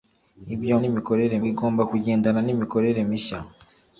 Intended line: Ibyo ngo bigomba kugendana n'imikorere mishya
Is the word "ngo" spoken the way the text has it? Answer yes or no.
no